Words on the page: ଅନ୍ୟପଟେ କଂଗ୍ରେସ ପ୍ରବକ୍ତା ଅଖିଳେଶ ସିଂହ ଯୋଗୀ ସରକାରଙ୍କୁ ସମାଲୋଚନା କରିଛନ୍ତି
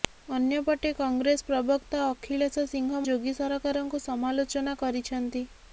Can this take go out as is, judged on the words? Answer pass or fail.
pass